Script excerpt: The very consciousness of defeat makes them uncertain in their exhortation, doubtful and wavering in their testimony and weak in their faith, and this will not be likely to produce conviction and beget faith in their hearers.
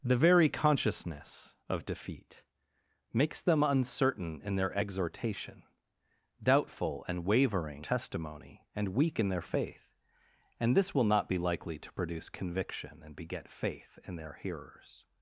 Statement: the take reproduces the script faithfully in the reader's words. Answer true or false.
false